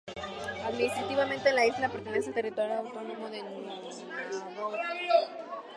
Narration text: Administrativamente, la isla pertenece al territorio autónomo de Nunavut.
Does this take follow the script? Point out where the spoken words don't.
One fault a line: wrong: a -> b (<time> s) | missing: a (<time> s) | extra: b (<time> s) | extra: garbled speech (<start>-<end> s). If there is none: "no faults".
no faults